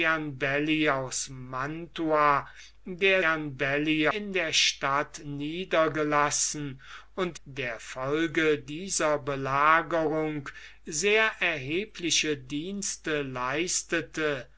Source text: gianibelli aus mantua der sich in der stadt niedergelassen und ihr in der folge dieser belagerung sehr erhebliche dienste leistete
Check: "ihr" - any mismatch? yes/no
yes